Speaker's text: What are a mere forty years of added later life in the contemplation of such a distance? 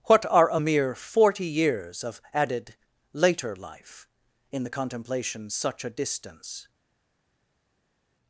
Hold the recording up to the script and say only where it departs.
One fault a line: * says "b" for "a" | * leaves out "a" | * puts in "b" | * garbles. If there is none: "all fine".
* leaves out "of"